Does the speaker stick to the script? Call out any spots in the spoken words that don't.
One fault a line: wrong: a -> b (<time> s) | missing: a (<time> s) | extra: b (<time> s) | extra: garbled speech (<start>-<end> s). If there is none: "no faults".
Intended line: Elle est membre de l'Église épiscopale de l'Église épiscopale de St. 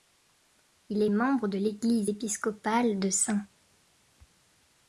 wrong: Elle -> Il (0.9 s)
missing: l'Église épiscopale de (3.1 s)